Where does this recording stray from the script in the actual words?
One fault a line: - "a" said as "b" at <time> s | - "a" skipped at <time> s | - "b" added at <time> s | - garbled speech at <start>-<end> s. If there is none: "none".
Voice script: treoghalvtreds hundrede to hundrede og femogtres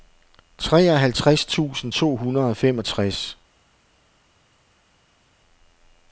- "hundrede" said as "tusind" at 1.4 s